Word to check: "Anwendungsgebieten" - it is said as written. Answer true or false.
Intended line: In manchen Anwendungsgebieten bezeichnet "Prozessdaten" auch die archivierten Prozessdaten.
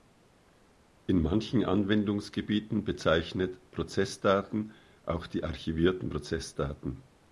true